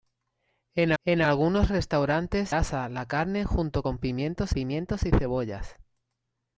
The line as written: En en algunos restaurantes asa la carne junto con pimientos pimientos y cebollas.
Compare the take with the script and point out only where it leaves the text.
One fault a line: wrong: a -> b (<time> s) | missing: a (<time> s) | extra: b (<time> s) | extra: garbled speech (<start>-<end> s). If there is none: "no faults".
no faults